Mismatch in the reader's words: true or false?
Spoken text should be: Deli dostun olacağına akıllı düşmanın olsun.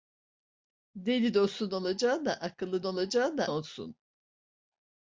true